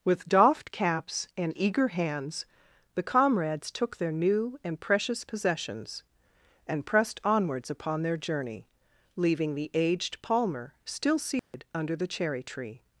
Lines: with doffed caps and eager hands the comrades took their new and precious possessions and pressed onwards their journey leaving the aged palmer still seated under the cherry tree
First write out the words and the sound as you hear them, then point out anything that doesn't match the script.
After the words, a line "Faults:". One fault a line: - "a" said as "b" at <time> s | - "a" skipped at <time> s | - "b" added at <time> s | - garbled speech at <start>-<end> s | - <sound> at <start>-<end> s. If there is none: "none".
with doffed caps and eager hands the comrades took their new and precious possessions and pressed onwards upon their journey leaving the aged palmer still seated under the cherry tree
Faults:
- "upon" added at 7.7 s
- dropout at 11.4-11.5 s